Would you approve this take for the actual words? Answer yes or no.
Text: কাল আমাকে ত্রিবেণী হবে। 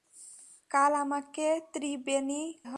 yes